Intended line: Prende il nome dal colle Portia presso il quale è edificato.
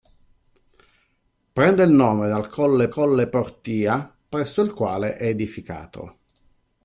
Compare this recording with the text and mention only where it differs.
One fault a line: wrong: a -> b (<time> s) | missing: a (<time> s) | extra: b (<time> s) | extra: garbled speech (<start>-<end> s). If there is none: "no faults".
extra: colle (2.9 s)